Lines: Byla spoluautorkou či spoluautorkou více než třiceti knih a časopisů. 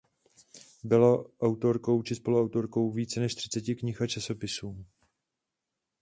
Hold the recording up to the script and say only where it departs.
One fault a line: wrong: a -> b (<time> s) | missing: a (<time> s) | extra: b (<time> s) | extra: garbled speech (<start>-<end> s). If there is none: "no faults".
wrong: spoluautorkou -> autorkou (1.4 s)